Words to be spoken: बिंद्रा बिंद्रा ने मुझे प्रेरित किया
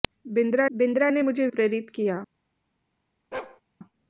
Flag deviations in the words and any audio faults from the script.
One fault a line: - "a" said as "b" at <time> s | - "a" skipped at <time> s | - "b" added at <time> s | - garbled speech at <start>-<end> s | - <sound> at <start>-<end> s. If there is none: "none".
- bark at 3.3-3.6 s